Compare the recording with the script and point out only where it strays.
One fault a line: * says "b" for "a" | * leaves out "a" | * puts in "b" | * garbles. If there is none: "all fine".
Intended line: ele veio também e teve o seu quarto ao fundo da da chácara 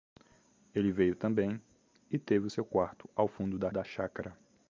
all fine